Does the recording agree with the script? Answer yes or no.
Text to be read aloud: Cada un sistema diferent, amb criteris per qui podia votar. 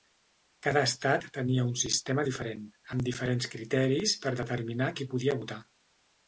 no